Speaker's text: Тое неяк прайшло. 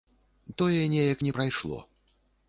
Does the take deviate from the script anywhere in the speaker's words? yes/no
yes